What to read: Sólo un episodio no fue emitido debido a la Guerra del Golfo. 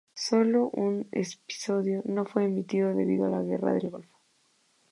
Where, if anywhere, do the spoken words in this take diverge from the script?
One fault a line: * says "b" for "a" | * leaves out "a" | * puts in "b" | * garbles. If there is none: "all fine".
all fine